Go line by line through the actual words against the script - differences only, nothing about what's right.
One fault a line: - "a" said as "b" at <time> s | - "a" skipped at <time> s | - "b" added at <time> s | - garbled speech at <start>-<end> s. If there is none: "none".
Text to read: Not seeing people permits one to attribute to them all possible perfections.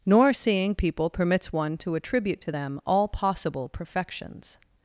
- "Not" said as "Nor" at 0.1 s